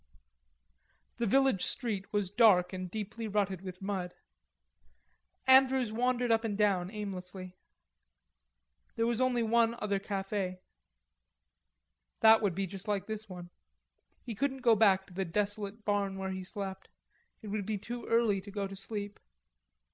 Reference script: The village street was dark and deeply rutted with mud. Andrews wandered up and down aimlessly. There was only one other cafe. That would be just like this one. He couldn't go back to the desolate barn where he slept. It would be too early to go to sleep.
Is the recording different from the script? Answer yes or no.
no